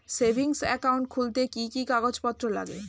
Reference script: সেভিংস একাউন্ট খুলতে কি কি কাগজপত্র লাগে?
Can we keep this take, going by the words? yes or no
yes